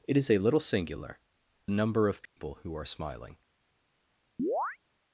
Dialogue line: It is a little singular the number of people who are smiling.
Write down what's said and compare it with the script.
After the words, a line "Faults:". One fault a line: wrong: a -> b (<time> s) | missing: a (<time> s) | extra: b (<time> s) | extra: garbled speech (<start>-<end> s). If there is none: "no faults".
It is a little singular number of people who are smiling.
Faults:
missing: the (1.2 s)